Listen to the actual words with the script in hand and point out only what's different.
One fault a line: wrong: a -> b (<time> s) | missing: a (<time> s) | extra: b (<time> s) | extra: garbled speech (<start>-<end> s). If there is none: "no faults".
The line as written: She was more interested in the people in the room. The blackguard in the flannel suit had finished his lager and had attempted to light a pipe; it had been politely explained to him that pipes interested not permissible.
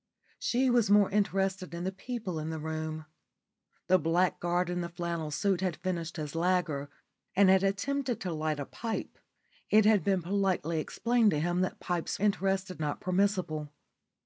no faults